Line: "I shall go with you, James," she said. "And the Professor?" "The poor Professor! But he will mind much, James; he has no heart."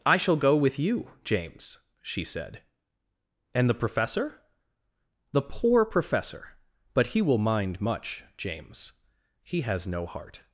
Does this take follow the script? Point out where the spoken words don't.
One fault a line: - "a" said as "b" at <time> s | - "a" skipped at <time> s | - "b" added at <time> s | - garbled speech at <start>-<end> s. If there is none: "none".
none